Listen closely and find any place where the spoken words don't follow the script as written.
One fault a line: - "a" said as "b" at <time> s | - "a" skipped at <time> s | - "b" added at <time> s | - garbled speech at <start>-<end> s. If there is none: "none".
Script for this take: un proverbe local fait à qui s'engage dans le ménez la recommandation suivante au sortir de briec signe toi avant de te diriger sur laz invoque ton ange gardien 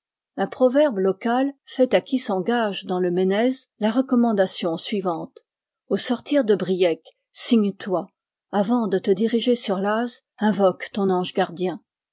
none